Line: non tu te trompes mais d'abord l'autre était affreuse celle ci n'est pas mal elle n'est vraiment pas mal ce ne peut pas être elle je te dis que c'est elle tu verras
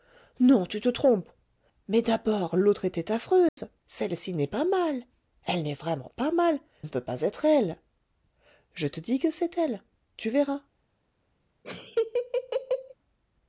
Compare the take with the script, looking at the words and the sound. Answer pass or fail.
fail